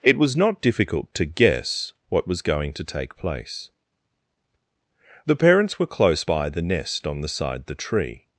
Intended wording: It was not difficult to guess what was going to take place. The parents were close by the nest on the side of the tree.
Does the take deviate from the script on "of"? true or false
true